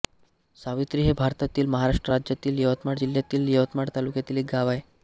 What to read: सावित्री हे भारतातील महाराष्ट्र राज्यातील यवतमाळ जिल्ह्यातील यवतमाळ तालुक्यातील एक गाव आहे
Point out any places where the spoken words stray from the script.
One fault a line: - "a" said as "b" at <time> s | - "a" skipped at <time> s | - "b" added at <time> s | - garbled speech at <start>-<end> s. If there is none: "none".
none